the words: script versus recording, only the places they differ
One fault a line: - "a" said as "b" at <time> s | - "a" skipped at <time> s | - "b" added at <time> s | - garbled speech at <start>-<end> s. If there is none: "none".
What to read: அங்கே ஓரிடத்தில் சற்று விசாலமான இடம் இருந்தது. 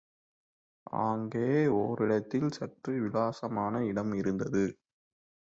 none